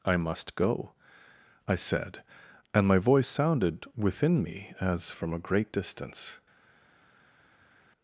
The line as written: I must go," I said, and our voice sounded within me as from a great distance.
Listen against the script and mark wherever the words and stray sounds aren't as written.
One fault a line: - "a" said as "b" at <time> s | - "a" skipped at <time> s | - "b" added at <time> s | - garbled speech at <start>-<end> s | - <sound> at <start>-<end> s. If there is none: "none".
- "our" said as "my" at 2.9 s